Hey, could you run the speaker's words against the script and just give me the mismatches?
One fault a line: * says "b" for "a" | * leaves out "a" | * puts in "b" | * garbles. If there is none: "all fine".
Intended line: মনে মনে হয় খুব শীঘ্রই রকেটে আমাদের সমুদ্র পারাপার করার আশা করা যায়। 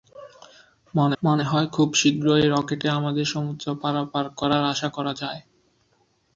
all fine